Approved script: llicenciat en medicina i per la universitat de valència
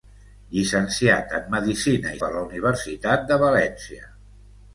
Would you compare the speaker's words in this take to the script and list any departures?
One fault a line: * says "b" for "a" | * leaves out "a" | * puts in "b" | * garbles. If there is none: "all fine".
all fine